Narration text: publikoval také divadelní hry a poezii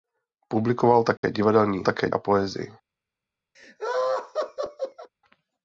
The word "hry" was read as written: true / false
false